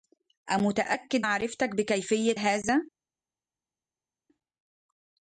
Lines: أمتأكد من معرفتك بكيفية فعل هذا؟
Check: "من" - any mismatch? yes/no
yes